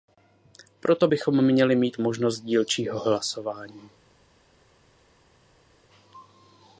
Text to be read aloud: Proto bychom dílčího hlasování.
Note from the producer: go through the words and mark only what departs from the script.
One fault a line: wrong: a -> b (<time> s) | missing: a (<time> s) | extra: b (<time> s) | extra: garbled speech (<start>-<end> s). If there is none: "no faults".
extra: měli mít možnost (1.4 s)